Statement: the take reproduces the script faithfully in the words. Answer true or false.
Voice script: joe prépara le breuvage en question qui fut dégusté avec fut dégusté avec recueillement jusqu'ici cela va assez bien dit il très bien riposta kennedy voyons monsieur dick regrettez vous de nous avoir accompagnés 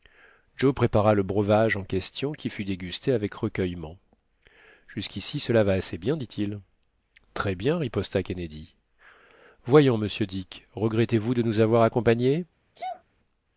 false